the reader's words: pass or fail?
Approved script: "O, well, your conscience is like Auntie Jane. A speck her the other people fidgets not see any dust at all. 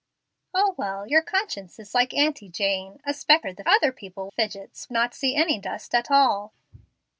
pass